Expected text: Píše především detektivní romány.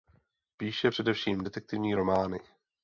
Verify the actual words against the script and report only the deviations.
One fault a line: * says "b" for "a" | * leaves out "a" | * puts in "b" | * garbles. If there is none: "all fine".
all fine